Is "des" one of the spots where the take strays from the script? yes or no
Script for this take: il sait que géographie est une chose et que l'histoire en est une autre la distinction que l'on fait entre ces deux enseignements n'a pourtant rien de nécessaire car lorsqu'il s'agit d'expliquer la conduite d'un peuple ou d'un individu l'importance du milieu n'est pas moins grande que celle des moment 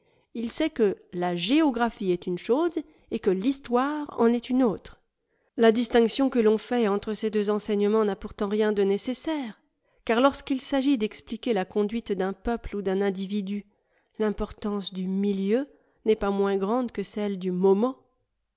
yes